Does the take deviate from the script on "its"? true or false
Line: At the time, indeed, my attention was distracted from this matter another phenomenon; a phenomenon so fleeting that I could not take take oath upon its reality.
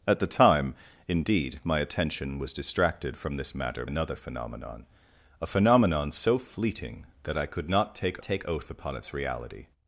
false